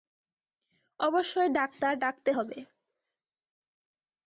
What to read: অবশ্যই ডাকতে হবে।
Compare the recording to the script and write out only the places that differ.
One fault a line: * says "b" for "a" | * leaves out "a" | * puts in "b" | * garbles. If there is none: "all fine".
* puts in "ডাক্তার"